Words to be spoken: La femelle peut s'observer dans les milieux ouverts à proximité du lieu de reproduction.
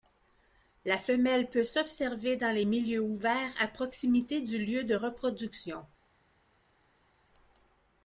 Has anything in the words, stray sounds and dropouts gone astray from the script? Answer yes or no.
no